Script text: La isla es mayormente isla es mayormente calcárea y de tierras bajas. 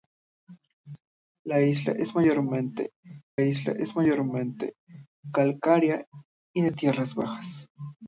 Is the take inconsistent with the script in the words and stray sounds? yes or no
no